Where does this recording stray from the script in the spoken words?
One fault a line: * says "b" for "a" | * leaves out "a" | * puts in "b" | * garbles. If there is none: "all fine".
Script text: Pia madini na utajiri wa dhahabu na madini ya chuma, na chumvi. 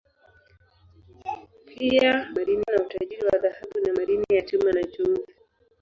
all fine